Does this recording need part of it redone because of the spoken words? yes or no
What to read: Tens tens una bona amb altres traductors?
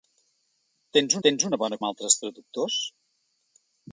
no